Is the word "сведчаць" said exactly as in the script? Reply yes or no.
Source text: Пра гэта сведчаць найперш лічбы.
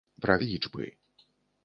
no